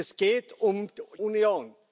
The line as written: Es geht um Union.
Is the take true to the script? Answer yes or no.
yes